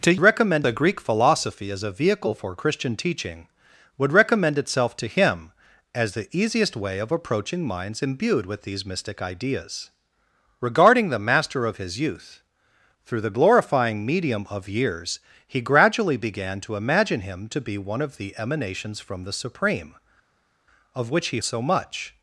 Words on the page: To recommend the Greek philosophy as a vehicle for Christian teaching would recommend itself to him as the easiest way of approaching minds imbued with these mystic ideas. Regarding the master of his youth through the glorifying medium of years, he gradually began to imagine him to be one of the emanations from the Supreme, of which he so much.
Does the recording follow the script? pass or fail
pass